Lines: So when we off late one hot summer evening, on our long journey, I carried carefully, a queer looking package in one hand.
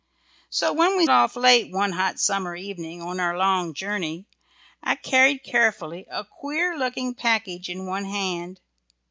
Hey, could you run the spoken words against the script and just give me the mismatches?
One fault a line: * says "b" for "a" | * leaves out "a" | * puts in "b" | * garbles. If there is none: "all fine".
all fine